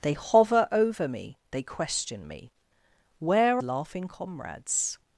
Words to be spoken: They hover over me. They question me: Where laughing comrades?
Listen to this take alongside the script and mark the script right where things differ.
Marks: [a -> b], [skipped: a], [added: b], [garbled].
They hover over me. They question me: Where laughing comrades?